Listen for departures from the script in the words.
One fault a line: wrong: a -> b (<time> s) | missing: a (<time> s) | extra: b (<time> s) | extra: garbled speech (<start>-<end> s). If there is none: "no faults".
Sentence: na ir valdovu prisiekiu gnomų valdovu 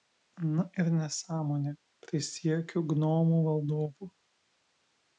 wrong: valdovu -> nesąmonė (0.9 s)